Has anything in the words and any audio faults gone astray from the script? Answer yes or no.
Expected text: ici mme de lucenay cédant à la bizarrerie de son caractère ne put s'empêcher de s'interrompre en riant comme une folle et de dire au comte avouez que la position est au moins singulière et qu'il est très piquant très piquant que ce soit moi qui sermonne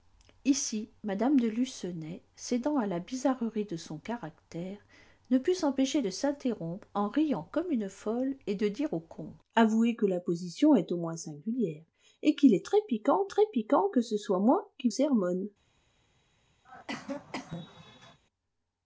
yes